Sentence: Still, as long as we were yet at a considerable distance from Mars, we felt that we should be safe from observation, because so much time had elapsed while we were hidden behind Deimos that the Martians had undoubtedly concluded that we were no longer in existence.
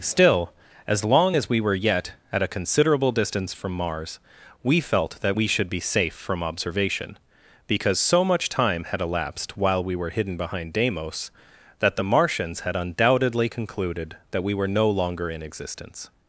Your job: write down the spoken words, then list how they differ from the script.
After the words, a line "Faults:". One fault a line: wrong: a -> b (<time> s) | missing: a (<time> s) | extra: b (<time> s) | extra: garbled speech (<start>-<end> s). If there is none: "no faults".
Still, as long as we were yet at a considerable distance from Mars, we felt that we should be safe from observation, because so much time had elapsed while we were hidden behind Deimos that the Martians had undoubtedly concluded that we were no longer in existence.
Faults:
no faults